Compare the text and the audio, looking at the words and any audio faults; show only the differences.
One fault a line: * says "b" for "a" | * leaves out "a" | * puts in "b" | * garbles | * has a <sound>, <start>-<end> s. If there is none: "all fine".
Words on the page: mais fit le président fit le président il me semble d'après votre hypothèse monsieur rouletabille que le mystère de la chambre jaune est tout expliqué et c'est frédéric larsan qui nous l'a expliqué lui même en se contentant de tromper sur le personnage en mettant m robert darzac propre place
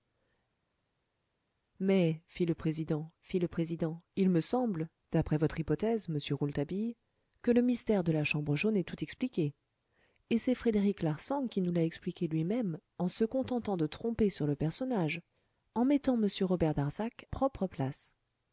all fine